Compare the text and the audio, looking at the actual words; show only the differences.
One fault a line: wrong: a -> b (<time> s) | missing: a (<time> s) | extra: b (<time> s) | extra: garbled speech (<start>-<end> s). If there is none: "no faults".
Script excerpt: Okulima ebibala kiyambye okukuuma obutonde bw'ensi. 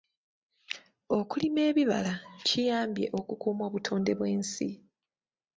no faults